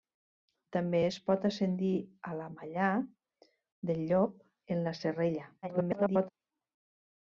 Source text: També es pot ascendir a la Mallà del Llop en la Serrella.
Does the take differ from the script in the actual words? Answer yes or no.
yes